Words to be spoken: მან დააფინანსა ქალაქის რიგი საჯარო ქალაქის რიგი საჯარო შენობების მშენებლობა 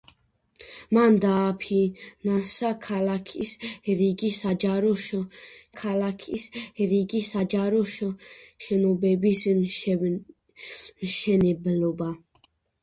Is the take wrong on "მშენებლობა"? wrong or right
right